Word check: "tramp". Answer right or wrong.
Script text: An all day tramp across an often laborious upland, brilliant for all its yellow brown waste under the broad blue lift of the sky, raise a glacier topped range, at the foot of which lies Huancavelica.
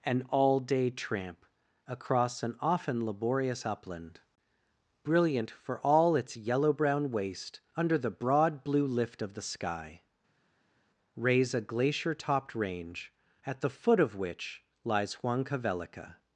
right